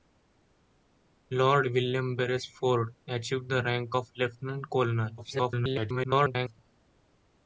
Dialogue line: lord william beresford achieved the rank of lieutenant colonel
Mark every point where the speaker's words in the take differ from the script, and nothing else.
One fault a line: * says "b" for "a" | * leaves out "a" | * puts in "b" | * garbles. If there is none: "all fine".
* garbles